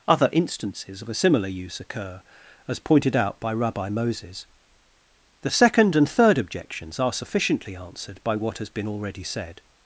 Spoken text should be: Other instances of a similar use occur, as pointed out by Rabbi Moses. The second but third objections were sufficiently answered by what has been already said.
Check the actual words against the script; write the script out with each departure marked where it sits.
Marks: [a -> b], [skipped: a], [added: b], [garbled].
Other instances of a similar use occur, as pointed out by Rabbi Moses. The second [but -> and] third objections [were -> are] sufficiently answered by what has been already said.